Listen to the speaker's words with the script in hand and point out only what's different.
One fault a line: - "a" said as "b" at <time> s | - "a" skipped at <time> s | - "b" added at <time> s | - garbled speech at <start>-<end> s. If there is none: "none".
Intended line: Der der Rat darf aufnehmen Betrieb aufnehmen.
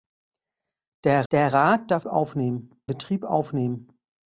none